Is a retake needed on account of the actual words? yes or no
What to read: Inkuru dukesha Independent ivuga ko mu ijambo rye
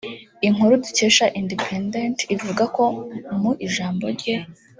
no